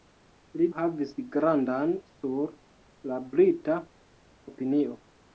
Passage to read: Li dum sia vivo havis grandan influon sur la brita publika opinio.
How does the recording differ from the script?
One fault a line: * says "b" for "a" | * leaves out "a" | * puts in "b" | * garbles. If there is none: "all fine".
* leaves out "dum sia vivo"
* leaves out "influon"
* leaves out "publika"